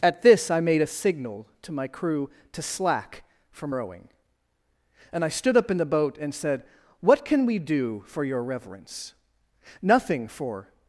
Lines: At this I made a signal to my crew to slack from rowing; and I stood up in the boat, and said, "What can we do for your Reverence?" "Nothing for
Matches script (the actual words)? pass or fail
pass